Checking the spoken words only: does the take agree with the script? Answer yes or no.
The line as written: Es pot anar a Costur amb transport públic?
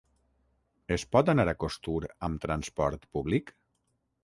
yes